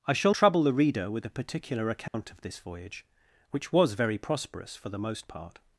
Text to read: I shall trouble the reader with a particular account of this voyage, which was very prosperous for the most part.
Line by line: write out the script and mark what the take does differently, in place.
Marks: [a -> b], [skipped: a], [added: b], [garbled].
I shall trouble the reader with a particular account of this voyage, which was very prosperous for the most part.